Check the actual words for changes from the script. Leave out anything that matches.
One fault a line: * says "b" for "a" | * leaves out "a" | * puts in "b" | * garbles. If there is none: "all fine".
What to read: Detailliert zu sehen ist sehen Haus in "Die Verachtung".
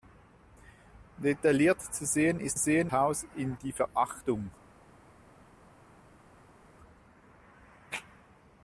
all fine